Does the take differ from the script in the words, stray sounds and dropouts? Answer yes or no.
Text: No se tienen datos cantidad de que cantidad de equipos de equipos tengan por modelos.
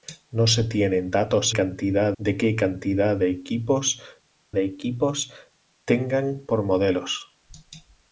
no